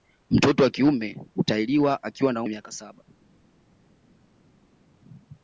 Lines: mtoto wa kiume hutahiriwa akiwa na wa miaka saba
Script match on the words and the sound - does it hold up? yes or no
yes